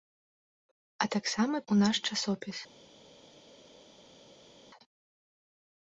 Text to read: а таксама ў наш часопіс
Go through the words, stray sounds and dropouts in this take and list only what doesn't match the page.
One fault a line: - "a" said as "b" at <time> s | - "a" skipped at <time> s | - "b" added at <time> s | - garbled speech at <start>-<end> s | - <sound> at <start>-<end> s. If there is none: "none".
none